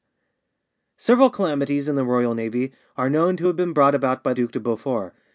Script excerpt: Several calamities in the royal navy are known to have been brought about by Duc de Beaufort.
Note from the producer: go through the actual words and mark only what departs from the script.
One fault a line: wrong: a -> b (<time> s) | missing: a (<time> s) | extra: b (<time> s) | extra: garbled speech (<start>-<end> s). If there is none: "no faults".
no faults